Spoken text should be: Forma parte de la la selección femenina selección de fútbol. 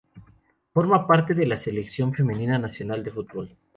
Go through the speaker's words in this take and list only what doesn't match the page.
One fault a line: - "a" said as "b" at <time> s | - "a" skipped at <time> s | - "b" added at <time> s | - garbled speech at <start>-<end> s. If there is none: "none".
- "la" skipped at 1.6 s
- "selección" said as "nacional" at 2.6 s